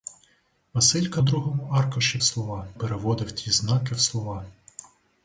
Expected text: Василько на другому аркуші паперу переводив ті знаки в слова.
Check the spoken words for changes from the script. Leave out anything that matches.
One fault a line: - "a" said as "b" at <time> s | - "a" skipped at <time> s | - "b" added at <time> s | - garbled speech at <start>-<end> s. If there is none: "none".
- "на" skipped at 1.2 s
- "паперу" said as "слова" at 2.2 s